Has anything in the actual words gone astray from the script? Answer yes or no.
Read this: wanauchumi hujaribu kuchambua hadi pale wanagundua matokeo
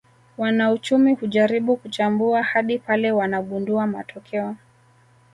no